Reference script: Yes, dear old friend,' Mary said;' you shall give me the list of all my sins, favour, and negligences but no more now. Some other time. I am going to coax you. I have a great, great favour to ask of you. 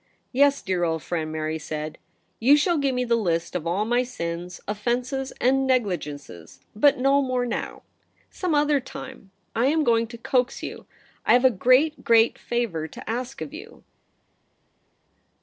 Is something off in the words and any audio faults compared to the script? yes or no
yes